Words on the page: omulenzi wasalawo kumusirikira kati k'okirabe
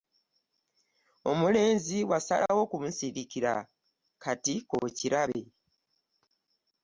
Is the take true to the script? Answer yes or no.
yes